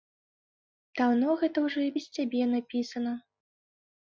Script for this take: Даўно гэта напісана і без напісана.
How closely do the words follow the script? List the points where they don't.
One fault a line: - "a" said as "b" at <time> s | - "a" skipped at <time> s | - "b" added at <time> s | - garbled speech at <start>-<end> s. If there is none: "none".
- "напісана" said as "ўжо" at 1.7 s
- "цябе" added at 2.2 s